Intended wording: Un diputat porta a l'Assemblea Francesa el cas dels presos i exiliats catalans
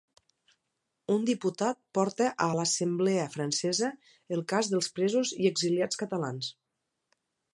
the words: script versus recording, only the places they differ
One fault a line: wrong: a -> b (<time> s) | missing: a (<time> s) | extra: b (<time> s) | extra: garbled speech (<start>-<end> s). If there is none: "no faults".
no faults